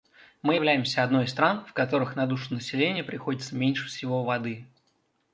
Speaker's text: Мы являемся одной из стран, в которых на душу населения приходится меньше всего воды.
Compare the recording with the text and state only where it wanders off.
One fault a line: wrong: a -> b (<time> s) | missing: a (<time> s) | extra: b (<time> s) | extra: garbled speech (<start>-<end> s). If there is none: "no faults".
no faults